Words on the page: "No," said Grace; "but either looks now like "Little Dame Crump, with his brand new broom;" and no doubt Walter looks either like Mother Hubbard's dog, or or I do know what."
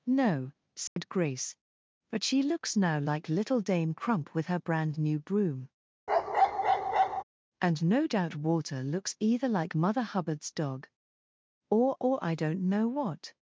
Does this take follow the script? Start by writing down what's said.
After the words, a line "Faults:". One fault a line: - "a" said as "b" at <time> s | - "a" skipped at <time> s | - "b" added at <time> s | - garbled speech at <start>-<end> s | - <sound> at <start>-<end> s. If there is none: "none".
"No," said Grace; "but she looks now like "Little Dame Crump, with her brand new broom;" and no doubt Walter looks either like Mother Hubbard's dog, or or I don't know what."
Faults:
- dropout at 0.9-1.0 s
- "either" said as "she" at 2.2 s
- "his" said as "her" at 4.5 s
- bark at 6.1-7.2 s
- "do" said as "don't" at 12.4 s